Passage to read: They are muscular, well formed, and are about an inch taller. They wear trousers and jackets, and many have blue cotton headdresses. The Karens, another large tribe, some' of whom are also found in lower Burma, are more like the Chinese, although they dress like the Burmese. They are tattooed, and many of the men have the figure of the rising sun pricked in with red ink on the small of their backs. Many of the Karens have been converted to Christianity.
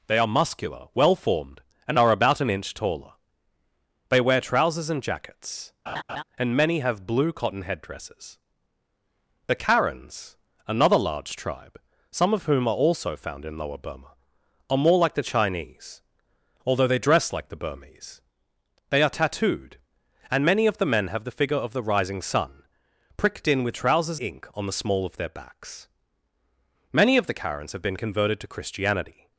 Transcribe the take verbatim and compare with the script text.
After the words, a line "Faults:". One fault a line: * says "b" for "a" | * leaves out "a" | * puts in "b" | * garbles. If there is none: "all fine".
They are muscular, well formed, and are about an inch taller. They wear trousers and jackets, and many have blue cotton headdresses. The Karens, another large tribe, some' of whom are also found in lower Burma, are more like the Chinese, although they dress like the Burmese. They are tattooed, and many of the men have the figure of the rising sun pricked in with trousers ink on the small of their backs. Many of the Karens have been converted to Christianity.
Faults:
* says "trousers" for "red"